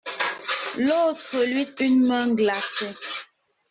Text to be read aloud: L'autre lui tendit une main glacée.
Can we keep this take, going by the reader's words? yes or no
no